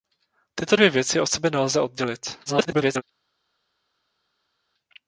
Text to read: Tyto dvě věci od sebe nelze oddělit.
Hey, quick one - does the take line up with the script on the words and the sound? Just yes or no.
no